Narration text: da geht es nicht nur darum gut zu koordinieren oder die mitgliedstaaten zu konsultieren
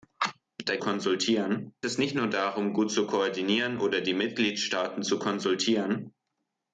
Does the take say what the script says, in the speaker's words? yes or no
no